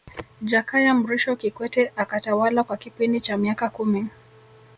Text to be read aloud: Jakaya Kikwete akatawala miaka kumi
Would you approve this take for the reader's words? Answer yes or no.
no